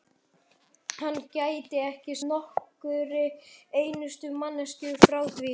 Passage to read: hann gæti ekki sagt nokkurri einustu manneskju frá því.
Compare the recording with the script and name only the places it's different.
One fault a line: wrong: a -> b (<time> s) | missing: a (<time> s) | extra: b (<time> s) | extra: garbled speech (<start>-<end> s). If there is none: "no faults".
missing: sagt (2.1 s)